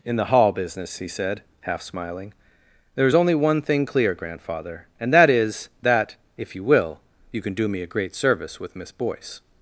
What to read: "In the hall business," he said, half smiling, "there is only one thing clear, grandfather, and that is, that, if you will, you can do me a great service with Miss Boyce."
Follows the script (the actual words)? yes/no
yes